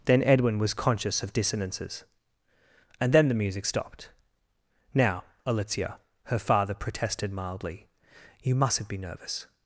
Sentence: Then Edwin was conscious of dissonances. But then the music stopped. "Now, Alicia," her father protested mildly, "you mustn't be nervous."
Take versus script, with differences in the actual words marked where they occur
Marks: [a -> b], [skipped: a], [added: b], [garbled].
Then Edwin was conscious of dissonances. [But -> And] then the music stopped. "Now, Alicia," her father protested mildly, "you mustn't be nervous."